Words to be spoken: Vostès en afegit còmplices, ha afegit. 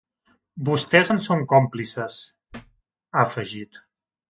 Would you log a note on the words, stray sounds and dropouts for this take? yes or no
yes